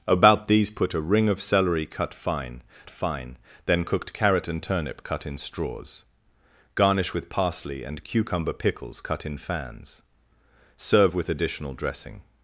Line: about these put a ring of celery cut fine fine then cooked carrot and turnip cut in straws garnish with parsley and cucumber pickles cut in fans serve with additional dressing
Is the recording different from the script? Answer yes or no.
no